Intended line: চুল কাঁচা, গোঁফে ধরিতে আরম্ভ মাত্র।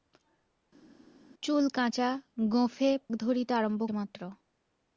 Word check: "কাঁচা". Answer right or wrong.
right